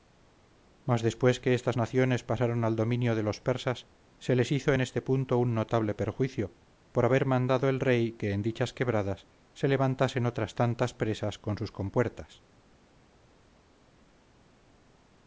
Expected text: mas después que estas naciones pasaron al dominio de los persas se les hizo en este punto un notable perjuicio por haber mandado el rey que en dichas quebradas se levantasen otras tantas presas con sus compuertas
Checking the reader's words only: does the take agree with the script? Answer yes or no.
yes